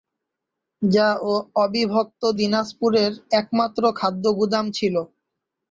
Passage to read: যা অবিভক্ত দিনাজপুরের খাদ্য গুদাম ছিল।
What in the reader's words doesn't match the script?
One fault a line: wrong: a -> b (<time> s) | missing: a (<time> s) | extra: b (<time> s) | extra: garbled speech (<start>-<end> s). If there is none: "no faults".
extra: একমাত্র (3.3 s)